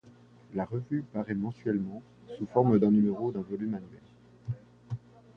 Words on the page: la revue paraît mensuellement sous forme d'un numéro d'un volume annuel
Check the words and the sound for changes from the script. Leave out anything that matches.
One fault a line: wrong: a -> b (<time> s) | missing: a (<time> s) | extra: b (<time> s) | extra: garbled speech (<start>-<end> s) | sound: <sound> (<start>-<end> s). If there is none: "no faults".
no faults